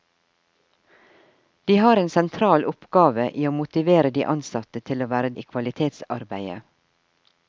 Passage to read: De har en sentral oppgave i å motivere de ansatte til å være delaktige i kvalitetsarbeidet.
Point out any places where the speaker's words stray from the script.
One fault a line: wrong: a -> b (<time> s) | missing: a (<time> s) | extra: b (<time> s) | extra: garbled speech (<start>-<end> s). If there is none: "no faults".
missing: delaktige (5.3 s)